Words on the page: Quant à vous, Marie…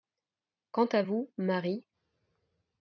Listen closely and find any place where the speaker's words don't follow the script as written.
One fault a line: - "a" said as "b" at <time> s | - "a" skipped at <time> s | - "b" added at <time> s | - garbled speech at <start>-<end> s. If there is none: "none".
none